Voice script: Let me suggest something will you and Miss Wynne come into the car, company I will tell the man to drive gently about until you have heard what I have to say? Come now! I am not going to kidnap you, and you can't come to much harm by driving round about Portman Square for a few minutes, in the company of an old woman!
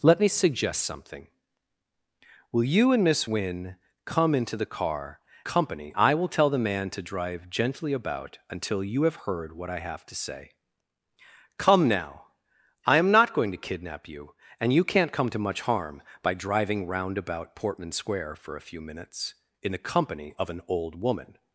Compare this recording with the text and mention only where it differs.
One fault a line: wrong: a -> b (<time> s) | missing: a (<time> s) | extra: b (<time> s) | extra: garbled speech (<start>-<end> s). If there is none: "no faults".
no faults